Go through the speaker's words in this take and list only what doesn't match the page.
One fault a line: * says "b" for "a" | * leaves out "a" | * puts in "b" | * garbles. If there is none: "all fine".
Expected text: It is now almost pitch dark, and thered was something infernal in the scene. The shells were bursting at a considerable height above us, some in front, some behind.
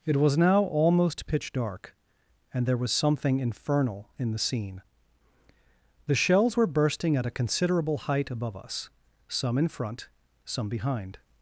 * says "was" for "is"
* says "there" for "thered"